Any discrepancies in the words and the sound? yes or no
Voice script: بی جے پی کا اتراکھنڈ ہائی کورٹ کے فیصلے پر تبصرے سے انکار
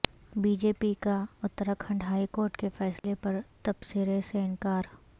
yes